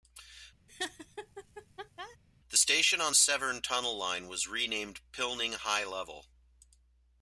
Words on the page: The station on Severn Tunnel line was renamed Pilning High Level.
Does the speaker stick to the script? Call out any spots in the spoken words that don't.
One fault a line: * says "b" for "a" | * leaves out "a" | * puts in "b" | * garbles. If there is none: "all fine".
all fine